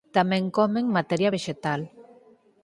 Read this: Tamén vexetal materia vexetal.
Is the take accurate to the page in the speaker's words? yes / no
no